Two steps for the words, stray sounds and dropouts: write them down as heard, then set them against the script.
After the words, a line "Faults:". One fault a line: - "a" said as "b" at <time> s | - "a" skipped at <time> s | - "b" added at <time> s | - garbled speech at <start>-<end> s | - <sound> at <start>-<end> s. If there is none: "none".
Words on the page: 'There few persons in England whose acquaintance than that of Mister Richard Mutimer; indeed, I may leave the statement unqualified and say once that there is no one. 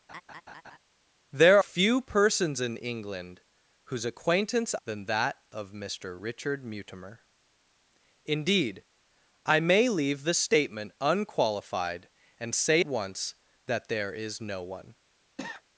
'There few persons in England whose acquaintance than that of Mister Richard Mutimer; indeed, I may leave the statement unqualified and say once that there is no one.
Faults:
- laugh at 0.1-0.8 s
- cough at 15.4-15.6 s